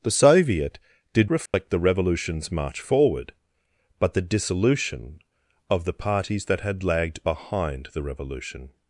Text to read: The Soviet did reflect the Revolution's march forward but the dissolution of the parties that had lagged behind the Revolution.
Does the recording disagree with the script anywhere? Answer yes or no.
no